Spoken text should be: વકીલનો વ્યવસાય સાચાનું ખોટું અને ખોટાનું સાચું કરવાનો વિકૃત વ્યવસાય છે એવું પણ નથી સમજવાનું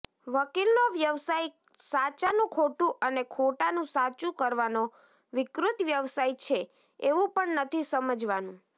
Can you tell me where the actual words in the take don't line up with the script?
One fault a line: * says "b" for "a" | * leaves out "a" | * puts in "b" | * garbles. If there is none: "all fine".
all fine